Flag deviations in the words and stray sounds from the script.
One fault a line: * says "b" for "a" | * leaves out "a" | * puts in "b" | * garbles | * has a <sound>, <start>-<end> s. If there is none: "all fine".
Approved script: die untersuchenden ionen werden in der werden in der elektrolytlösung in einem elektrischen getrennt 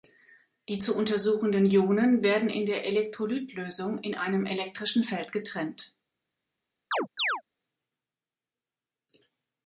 * puts in "zu"
* leaves out "werden in der"
* puts in "feld"
* has a chirp, 6.9-7.4 s